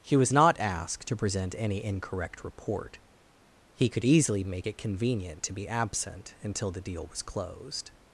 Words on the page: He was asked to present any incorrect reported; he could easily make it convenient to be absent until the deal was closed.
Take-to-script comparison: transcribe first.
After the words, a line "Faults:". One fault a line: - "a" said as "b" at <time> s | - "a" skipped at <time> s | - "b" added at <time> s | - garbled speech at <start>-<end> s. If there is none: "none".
He was not asked to present any incorrect report; he could easily make it convenient to be absent until the deal was closed.
Faults:
- "not" added at 0.3 s
- "reported" said as "report" at 2.4 s